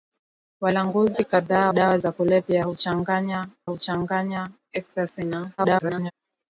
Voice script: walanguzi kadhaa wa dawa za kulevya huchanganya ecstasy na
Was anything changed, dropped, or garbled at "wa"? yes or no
yes